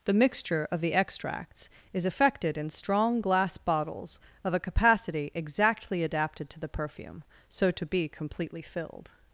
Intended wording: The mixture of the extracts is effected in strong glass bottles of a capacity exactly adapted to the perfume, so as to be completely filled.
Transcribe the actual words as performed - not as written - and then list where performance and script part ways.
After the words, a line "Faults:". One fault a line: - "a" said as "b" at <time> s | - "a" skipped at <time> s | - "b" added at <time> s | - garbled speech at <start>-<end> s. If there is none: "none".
The mixture of the extracts is effected in strong glass bottles of a capacity exactly adapted to the perfume, so to be completely filled.
Faults:
- "as" skipped at 7.7 s